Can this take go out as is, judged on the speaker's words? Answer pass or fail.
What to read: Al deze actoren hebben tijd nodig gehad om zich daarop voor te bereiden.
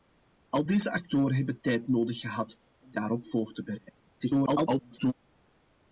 fail